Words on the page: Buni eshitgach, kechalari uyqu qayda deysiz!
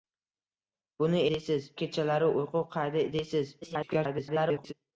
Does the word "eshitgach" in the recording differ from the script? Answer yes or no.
yes